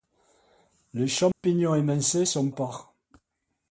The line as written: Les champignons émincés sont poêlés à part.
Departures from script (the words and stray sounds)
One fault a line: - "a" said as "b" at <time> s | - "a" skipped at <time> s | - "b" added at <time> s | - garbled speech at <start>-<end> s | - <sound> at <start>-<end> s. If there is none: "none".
- dropout at 1.3-1.4 s
- "poêlés à" skipped at 2.5 s